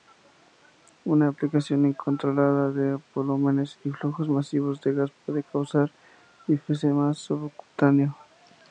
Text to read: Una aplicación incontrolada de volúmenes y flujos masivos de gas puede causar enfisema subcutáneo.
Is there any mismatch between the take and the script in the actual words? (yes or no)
no